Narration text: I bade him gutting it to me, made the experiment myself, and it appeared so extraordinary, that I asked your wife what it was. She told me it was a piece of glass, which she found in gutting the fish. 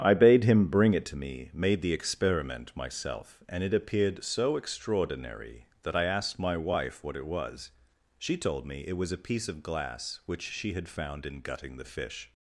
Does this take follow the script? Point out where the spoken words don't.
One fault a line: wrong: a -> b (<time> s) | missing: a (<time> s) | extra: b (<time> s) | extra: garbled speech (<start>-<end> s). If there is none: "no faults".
wrong: gutting -> bring (0.7 s)
wrong: your -> my (6.4 s)
extra: had (10.7 s)